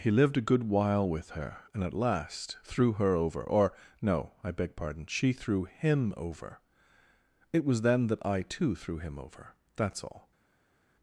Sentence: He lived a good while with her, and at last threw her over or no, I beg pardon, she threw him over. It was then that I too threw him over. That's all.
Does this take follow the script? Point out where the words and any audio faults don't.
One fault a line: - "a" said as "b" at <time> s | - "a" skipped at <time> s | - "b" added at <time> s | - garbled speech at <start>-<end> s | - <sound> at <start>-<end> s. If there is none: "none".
none